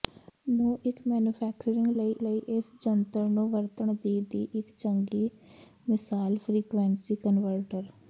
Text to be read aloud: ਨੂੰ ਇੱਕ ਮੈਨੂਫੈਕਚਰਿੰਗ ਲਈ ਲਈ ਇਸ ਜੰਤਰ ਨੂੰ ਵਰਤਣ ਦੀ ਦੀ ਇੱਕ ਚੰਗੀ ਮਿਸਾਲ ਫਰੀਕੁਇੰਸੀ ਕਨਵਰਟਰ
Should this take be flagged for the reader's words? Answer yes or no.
no